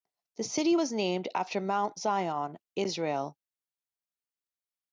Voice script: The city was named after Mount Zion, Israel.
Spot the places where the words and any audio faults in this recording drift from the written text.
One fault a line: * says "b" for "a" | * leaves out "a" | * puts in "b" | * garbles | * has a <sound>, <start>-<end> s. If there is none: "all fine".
all fine